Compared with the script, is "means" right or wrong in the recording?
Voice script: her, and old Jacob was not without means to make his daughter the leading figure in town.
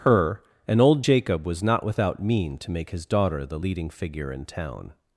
wrong